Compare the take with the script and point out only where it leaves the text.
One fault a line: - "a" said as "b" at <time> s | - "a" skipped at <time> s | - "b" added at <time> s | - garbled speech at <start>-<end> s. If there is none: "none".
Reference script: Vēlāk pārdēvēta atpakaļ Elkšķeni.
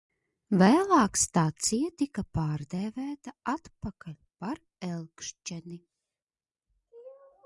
- "stacija tika" added at 1.2 s
- "par" added at 4.4 s